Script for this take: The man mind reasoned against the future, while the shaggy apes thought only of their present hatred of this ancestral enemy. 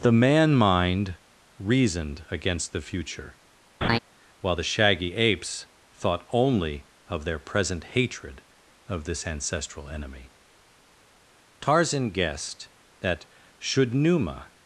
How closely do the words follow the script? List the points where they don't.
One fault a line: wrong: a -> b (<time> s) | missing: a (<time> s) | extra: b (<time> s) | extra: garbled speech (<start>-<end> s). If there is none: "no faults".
extra: Tarzan guessed that should Numa (11.6 s)